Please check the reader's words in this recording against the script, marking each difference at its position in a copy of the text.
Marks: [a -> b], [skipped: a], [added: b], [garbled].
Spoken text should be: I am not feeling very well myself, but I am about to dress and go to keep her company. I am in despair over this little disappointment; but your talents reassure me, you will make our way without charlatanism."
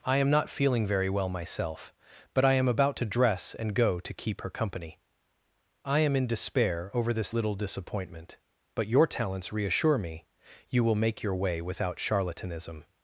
I am not feeling very well myself, but I am about to dress and go to keep her company. I am in despair over this little disappointment; but your talents reassure me, you will make [our -> your] way without charlatanism."